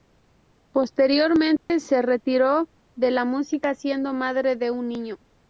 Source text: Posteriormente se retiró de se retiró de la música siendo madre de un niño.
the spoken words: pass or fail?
fail